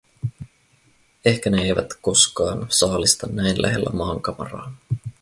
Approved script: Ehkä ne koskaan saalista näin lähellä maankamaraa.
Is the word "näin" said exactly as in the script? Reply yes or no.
yes